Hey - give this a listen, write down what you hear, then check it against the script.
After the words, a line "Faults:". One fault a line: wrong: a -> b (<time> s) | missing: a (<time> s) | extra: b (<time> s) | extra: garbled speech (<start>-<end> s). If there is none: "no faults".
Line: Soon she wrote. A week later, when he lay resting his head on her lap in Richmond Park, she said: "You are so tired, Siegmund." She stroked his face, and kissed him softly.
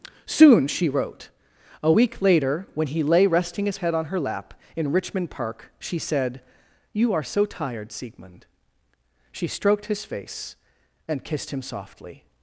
Soon she wrote. A week later, when he lay resting his head on her lap in Richmond Park, she said: "You are so tired, Siegmund." She stroked his face, and kissed him softly.
Faults:
no faults